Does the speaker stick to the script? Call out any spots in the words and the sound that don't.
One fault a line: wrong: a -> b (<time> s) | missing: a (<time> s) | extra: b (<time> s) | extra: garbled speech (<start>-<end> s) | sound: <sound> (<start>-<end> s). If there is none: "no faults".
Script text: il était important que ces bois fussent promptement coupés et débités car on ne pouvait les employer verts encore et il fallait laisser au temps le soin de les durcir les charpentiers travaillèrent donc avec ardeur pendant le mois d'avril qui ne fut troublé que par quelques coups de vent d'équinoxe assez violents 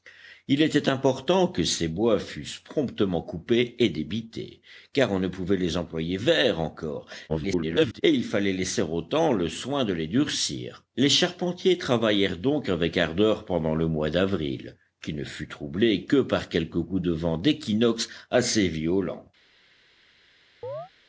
extra: garbled speech (7.3-8.0 s)
sound: chirp (20.6-20.9 s)